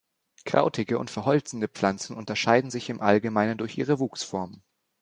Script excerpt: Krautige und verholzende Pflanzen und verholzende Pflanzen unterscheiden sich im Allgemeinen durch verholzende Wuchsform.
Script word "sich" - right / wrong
right